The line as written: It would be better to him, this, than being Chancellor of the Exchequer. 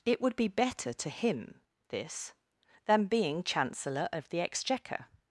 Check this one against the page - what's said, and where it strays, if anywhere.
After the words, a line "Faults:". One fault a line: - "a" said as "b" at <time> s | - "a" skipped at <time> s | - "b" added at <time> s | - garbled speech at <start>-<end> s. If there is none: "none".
It would be better to him, this, than being Chancellor of the Exchequer.
Faults:
none